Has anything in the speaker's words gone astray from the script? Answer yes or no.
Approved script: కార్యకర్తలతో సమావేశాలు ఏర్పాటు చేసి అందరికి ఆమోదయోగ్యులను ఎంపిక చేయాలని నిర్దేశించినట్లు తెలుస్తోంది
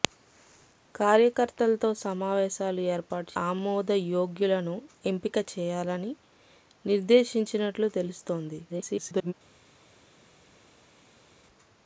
yes